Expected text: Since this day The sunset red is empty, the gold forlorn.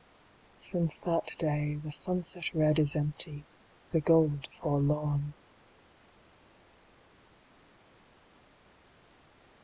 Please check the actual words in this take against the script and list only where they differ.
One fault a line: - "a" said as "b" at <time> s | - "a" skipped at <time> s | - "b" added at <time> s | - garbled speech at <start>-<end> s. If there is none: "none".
- "this" said as "that" at 1.0 s